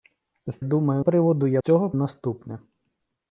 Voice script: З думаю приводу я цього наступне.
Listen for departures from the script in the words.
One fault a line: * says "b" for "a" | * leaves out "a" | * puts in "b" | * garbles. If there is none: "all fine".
all fine